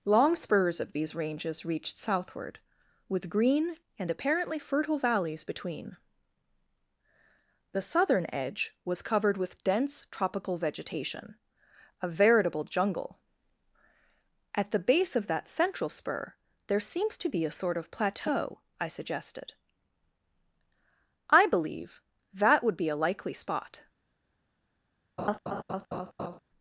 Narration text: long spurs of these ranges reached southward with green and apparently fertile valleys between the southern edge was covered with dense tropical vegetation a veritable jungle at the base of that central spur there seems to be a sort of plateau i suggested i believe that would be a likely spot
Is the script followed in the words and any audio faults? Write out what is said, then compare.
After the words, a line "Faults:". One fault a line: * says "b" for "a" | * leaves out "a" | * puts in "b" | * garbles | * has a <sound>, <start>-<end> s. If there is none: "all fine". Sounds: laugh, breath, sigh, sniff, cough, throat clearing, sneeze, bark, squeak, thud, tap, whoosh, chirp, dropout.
long spurs of these ranges reached southward with green and apparently fertile valleys between the southern edge was covered with dense tropical vegetation a veritable jungle at the base of that central spur there seems to be a sort of plateau i suggested i believe that would be a likely spot
Faults:
* has a laugh, 25.2-26.4 s